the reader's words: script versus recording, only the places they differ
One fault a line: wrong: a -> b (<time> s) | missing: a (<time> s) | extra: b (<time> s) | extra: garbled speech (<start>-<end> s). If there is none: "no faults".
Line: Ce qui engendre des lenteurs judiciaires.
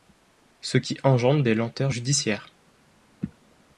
no faults